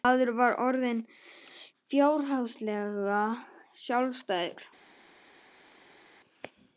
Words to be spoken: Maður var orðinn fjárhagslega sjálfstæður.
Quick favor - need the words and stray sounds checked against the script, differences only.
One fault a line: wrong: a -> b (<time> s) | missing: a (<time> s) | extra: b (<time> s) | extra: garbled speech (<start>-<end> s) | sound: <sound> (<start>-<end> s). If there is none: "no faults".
no faults